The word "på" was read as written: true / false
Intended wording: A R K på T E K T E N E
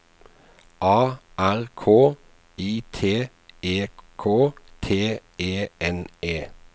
false